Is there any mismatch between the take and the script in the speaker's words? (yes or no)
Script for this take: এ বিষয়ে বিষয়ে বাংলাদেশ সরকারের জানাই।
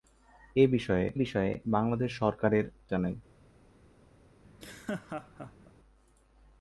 no